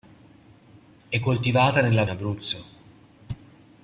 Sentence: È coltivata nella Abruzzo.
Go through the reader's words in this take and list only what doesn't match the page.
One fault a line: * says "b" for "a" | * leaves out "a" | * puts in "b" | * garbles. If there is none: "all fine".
all fine